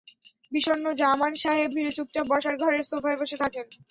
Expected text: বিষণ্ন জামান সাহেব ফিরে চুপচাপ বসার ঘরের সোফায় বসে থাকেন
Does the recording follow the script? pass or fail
pass